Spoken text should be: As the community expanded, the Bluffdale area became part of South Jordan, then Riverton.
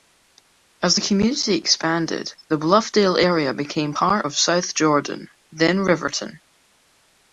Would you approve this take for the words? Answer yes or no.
yes